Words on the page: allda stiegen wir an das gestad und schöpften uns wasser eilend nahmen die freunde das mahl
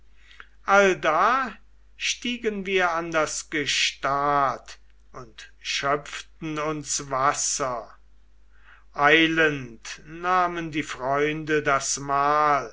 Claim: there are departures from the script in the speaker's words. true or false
false